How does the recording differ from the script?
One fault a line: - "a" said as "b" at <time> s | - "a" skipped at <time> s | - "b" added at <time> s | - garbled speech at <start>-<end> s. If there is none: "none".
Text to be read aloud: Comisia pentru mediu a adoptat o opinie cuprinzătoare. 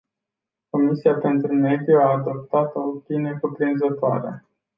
none